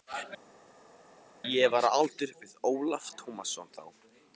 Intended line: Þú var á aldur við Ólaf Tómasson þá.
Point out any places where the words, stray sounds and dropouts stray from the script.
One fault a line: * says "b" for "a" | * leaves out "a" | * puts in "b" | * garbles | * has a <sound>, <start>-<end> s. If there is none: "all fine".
* says "Ég" for "Þú"